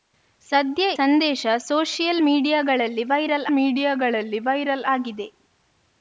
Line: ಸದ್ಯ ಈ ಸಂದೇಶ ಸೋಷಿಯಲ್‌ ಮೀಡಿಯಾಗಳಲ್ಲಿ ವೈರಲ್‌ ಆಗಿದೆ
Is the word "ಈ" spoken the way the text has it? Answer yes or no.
no